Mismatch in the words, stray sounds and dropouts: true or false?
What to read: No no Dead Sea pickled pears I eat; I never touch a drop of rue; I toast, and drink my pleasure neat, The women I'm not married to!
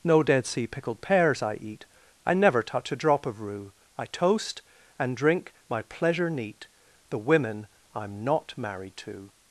true